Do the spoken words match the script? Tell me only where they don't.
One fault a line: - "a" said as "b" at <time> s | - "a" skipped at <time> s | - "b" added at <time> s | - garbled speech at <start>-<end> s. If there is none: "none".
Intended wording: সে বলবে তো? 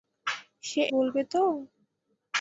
none